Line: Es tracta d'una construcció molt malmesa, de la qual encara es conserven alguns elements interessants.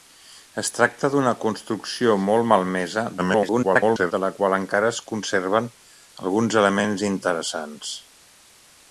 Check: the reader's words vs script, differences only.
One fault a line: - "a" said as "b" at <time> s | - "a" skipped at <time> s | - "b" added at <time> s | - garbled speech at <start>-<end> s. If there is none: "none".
- garbled speech at 3.2-4.1 s